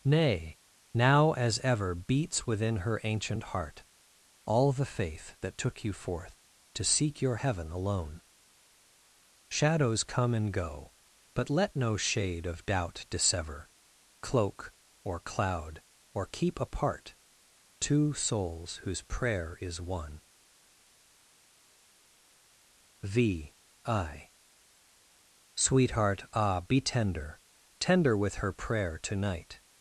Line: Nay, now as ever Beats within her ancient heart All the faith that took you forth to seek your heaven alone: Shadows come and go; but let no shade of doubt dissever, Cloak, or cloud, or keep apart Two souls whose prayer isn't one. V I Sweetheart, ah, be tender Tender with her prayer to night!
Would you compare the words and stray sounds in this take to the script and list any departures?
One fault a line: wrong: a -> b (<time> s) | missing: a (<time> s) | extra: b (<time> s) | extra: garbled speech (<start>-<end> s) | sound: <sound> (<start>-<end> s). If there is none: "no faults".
wrong: isn't -> is (19.6 s)